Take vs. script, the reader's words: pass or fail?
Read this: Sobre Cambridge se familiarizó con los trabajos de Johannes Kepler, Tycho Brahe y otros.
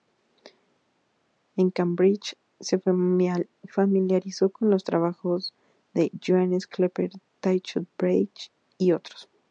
fail